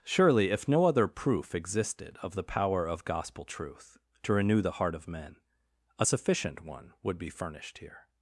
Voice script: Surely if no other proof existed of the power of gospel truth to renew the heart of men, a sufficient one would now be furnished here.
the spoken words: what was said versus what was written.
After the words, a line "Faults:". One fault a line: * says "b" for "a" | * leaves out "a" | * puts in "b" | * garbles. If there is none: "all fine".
Surely if no other proof existed of the power of gospel truth to renew the heart of men, a sufficient one would be furnished here.
Faults:
* leaves out "now"